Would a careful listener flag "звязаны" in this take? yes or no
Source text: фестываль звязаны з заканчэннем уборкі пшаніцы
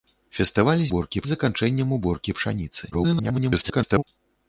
yes